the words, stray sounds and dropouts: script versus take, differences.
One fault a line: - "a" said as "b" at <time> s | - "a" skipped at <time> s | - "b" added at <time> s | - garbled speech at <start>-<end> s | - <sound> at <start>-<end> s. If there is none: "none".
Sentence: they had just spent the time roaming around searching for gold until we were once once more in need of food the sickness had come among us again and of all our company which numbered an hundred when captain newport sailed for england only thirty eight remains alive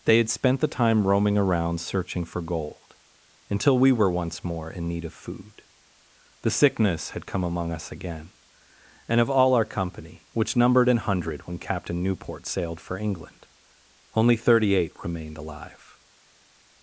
- "just" skipped at 0.3 s
- "once" skipped at 4.4 s
- "remains" said as "remained" at 15.0 s